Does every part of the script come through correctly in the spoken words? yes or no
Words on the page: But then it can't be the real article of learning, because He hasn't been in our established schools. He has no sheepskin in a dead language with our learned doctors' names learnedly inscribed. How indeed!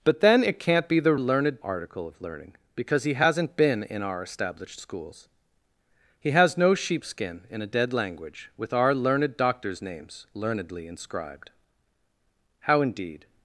no